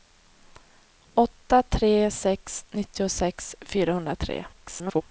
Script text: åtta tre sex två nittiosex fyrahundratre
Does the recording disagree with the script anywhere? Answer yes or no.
yes